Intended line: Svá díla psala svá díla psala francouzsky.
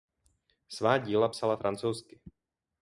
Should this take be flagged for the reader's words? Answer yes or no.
yes